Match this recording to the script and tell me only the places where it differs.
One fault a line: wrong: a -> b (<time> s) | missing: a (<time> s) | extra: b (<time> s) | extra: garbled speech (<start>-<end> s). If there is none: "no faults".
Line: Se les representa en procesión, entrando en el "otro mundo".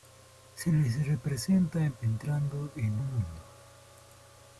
missing: procesión (1.9 s)
missing: el otro (3.0 s)